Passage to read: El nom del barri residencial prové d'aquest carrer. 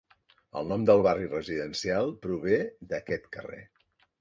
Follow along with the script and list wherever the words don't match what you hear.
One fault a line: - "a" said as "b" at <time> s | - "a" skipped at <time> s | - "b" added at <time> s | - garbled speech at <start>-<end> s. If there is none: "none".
none